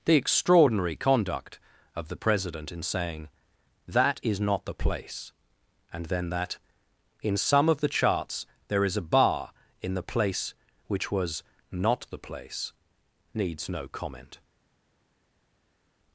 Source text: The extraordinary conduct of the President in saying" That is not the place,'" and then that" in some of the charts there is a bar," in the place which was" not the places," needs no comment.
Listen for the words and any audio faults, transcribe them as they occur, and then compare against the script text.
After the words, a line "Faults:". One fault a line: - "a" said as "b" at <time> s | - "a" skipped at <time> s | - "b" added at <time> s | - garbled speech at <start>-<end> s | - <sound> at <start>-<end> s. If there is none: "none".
The extraordinary conduct of the President in saying" That is not the place,'" and then that" in some of the charts there is a bar," in the place which was" not the place," needs no comment.
Faults:
- "places" said as "place" at 12.2 s